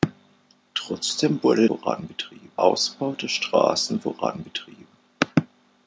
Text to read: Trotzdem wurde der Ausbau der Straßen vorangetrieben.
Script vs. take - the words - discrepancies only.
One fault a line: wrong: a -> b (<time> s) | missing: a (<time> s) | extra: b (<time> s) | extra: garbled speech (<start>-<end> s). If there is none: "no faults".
wrong: der -> vorangetrieben (1.6 s)